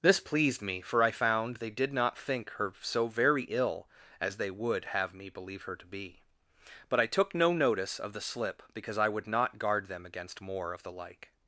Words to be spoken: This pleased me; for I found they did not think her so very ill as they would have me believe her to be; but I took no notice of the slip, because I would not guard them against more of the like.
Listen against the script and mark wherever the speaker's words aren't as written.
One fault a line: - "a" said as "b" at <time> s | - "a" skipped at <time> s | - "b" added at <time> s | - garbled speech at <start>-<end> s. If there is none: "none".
none